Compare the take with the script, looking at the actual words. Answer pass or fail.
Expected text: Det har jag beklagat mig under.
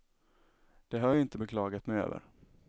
fail